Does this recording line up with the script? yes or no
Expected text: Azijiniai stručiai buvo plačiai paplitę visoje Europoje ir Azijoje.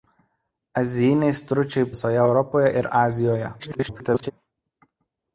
no